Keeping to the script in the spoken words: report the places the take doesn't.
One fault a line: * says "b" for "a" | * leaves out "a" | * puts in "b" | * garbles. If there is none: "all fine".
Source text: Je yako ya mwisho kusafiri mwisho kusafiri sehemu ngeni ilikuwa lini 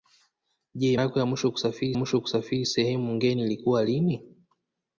all fine